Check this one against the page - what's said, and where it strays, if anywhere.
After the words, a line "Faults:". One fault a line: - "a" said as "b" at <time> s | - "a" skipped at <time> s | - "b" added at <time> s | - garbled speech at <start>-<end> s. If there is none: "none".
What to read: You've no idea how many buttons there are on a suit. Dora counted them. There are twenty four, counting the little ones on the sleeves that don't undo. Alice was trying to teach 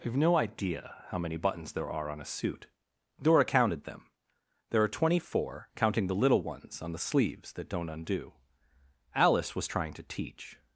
You've no idea how many buttons there are on a suit. Dora counted them. There are twenty four, counting the little ones on the sleeves that don't undo. Alice was trying to teach
Faults:
none